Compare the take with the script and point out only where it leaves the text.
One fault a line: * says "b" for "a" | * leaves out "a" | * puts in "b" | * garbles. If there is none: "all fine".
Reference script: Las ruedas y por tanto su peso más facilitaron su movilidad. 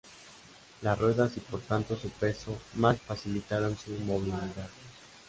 all fine